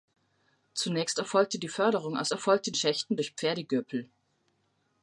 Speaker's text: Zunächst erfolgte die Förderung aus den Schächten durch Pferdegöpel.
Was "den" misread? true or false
true